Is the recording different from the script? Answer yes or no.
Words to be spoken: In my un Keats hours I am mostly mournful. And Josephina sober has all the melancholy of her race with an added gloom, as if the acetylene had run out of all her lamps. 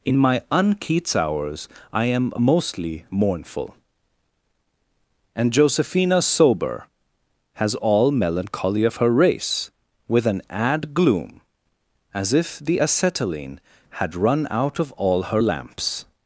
yes